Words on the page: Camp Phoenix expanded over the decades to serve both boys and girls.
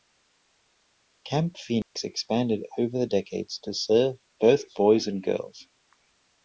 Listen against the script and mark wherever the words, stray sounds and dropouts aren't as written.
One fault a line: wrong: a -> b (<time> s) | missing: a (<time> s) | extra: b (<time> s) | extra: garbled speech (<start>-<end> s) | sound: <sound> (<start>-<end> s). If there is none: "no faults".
sound: dropout (1.8-2.0 s)